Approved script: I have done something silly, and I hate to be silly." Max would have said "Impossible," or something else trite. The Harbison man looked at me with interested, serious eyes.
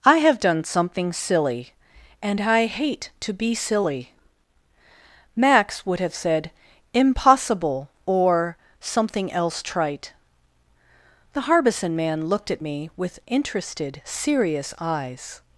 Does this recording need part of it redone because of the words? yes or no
no